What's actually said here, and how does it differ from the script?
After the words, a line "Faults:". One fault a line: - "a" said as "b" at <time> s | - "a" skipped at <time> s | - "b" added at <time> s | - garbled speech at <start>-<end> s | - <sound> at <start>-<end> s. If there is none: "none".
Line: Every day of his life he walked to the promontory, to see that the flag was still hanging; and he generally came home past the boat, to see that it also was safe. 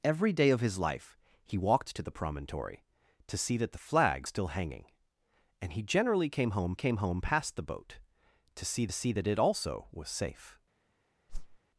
Every day of his life he walked to the promontory, to see that the flag still hanging; and he generally came home came home past the boat, to see see that it also was safe.
Faults:
- "was" skipped at 4.3 s
- "came home" added at 6.7 s
- "see" added at 8.9 s
- whoosh at 11.3-11.6 s